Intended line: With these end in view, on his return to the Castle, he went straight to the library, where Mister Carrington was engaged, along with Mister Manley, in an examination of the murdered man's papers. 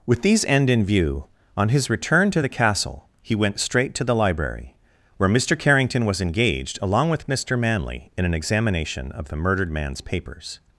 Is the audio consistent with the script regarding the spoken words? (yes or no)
yes